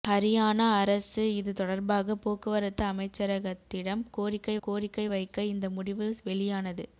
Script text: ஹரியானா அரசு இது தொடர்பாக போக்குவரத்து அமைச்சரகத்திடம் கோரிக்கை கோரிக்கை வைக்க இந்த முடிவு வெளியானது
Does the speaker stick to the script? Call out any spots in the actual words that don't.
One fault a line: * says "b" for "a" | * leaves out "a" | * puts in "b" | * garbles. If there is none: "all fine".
all fine